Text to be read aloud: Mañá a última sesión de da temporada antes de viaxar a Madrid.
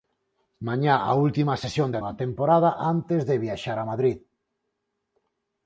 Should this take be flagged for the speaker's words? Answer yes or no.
no